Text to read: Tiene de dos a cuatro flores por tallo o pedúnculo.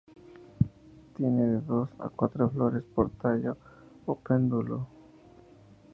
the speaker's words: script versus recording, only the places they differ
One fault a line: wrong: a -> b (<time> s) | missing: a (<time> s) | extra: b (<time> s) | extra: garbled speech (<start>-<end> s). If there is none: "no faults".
no faults